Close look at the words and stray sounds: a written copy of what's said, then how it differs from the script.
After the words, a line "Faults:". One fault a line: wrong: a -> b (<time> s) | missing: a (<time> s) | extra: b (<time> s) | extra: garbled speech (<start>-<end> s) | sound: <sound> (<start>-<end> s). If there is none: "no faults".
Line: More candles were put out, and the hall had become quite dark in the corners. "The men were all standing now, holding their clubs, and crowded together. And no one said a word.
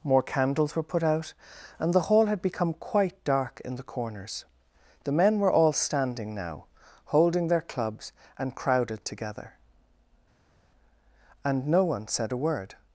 More candles were put out, and the hall had become quite dark in the corners. "The men were all standing now, holding their clubs, and crowded together. And no one said a word.
Faults:
no faults